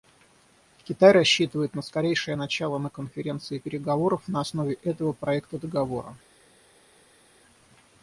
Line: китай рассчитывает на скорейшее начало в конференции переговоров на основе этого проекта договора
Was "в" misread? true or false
true